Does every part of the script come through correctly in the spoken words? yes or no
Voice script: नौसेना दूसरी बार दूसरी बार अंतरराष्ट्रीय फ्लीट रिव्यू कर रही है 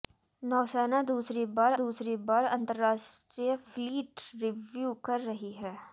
yes